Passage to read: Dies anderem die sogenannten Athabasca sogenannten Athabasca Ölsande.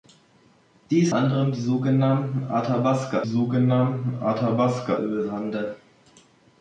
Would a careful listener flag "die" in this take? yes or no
no